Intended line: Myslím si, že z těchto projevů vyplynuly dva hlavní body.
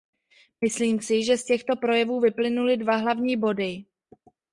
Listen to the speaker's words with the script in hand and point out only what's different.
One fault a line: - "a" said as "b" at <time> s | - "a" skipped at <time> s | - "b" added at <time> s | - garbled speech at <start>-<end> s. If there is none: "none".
none